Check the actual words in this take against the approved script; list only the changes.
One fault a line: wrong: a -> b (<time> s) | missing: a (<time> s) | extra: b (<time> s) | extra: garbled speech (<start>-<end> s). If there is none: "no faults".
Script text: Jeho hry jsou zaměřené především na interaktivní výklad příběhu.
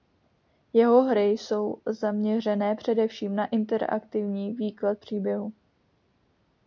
no faults